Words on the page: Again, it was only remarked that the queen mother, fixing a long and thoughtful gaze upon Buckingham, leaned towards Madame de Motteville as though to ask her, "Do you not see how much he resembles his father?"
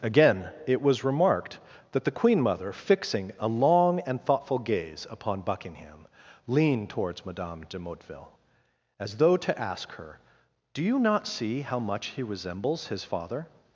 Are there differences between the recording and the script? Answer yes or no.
yes